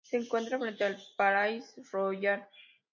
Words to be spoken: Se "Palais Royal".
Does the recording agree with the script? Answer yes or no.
no